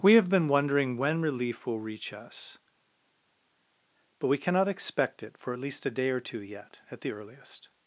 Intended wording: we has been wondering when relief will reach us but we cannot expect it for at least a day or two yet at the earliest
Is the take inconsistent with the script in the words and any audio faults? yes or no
yes